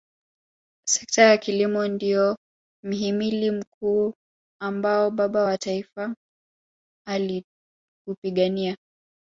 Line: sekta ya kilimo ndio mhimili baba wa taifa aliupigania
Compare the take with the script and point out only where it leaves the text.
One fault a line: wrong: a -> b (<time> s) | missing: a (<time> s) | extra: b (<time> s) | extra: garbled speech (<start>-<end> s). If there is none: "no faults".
extra: mkuu ambao (3.5 s)